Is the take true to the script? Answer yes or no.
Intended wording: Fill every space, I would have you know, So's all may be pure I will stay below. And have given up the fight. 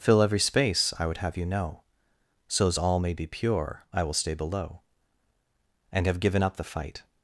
yes